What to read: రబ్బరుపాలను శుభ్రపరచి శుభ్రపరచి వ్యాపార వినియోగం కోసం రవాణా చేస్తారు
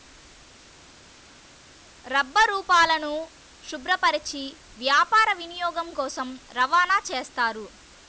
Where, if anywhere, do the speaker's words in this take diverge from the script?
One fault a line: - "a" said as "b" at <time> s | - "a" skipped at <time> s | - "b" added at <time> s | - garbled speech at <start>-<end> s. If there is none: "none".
- "శుభ్రపరచి" skipped at 4.4 s